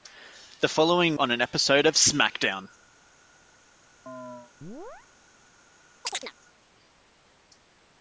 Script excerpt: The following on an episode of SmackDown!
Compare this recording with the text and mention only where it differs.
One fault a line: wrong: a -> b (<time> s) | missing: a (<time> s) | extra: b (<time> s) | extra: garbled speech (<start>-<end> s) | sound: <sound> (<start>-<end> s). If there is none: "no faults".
sound: chirp (4.1-5.1 s)
sound: chirp (6.0-6.3 s)